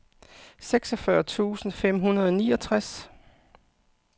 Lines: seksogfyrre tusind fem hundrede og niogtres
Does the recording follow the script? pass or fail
pass